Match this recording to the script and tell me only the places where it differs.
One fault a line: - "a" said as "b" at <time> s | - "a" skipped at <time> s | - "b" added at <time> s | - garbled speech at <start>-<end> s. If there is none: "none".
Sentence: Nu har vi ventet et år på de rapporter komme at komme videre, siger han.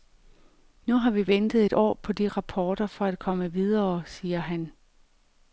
- "komme" said as "for" at 2.9 s